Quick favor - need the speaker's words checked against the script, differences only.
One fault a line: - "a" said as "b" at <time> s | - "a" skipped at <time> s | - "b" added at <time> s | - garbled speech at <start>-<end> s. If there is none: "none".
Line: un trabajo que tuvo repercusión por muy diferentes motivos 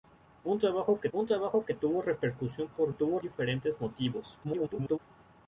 - "un trabajo que" added at 1.1 s
- "muy" said as "tuvo" at 2.9 s
- garbled speech at 4.4-5.0 s